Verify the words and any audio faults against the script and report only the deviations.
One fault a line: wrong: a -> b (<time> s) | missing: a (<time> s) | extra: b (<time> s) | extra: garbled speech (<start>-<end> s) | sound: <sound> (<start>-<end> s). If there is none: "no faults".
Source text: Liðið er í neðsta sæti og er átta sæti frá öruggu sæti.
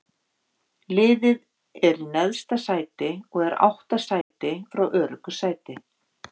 sound: dropout (4.2-4.3 s)